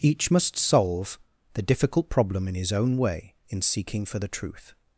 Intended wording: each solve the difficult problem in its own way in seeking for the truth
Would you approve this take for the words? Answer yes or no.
no